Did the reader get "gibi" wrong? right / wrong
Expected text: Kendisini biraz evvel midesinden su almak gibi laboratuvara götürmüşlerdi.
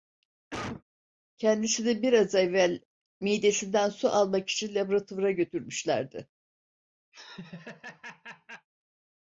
wrong